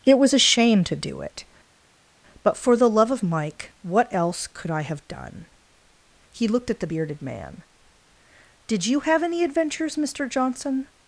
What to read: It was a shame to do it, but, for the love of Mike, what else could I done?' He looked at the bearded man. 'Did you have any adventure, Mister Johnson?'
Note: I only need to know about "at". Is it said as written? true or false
true